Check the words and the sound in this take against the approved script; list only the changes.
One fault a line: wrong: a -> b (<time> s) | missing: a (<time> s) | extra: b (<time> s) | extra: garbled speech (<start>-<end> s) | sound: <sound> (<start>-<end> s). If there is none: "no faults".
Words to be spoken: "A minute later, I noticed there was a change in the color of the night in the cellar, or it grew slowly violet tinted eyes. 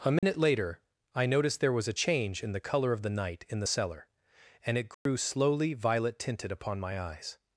sound: dropout (0.2-0.2 s)
wrong: or -> and (4.6 s)
sound: dropout (4.9-5.1 s)
extra: upon my (6.5 s)